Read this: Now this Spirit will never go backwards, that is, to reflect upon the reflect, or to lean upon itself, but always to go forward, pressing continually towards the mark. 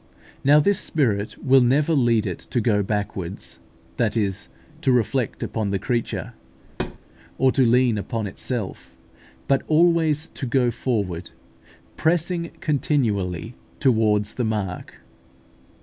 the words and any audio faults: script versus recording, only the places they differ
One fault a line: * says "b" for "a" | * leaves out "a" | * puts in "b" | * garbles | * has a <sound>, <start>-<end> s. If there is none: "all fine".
* puts in "lead it to"
* says "creature" for "reflect"
* has a thud, 6.6-7.0 s